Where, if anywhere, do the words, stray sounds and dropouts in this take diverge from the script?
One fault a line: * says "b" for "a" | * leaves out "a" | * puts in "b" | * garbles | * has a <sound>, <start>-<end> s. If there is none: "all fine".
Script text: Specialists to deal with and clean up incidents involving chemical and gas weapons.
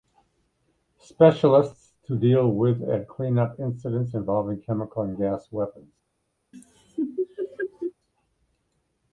* has a laugh, 6.5-7.9 s